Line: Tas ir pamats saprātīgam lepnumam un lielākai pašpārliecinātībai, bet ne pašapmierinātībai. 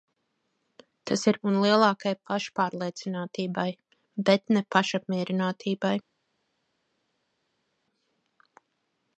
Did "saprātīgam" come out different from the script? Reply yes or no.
yes